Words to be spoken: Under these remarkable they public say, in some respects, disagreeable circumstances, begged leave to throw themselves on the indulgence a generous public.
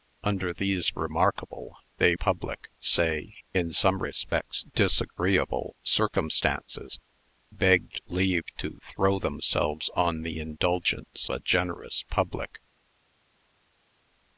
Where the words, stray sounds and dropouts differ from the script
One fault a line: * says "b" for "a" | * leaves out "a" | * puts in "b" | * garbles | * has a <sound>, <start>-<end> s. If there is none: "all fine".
all fine